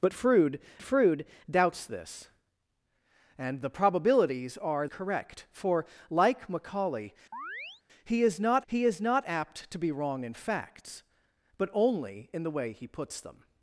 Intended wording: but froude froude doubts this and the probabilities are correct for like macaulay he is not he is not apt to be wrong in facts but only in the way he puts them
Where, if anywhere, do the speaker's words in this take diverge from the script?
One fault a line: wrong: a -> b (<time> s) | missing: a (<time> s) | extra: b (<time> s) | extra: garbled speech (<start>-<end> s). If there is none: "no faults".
no faults